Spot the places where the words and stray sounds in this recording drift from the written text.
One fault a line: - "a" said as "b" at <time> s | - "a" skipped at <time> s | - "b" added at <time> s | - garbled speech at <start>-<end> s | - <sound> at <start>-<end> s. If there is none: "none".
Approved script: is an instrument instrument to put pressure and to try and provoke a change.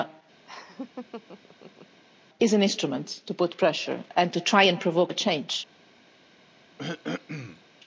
- laugh at 0.4-2.0 s
- "instrument" skipped at 3.2 s
- throat clearing at 6.8-7.6 s